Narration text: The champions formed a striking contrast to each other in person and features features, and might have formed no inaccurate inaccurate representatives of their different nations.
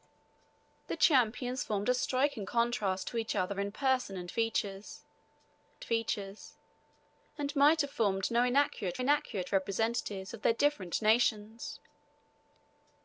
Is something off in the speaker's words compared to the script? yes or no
no